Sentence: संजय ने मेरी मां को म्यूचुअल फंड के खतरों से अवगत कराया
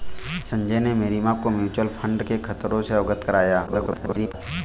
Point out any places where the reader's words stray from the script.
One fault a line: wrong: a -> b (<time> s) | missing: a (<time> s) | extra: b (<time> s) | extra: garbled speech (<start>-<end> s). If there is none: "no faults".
extra: garbled speech (3.7-4.3 s)